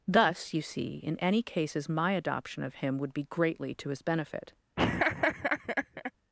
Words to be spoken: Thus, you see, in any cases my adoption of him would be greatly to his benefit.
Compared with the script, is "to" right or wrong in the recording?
right